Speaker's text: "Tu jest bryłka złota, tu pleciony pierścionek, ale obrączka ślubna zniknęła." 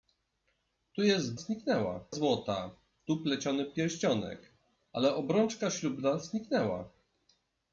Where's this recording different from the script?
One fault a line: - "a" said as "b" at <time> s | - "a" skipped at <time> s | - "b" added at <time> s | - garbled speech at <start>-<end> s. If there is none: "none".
- "bryłka" said as "zniknęła" at 1.3 s